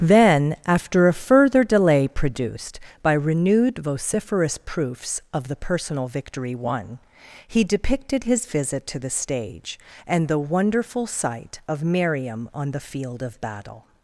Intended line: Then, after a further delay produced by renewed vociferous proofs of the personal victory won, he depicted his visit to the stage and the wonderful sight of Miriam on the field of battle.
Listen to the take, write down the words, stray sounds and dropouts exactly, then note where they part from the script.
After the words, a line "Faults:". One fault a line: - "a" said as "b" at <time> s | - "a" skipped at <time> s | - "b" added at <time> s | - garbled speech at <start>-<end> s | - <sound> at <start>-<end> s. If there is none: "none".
Then, after a further delay produced by renewed vociferous proofs of the personal victory won, he depicted his visit to the stage and the wonderful sight of Miriam on the field of battle.
Faults:
none